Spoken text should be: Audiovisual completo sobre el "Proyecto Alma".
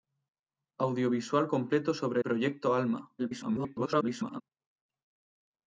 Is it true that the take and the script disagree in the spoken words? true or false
true